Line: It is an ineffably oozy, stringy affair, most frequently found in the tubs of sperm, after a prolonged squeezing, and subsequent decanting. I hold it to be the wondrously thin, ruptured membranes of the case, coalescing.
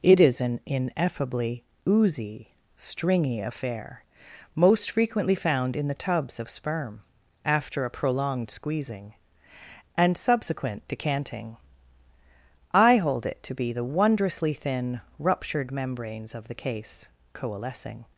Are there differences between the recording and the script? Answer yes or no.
no